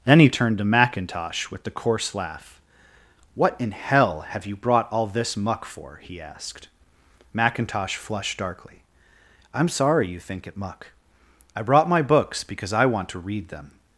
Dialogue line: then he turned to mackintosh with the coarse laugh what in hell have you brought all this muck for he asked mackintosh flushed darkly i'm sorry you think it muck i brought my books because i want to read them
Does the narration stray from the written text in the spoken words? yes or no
no